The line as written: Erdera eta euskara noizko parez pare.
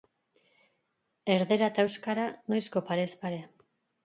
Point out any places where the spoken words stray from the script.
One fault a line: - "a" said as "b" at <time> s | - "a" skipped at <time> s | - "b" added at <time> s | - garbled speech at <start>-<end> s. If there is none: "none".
none